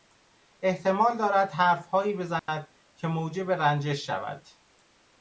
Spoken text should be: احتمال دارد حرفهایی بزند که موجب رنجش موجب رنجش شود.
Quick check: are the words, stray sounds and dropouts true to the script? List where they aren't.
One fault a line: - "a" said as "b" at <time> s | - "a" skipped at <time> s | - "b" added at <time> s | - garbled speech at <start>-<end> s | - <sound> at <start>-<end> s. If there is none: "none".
- dropout at 2.4-2.5 s
- "موجب رنجش" skipped at 4.0 s